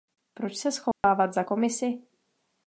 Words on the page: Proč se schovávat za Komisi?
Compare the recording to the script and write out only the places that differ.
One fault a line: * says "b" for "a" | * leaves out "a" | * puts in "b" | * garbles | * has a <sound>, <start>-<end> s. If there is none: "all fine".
* has a dropout, 0.9-1.0 s